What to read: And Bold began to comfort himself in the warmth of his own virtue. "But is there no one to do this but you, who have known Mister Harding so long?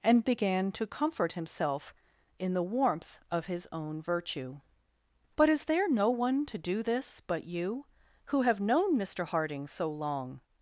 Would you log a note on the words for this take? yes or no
yes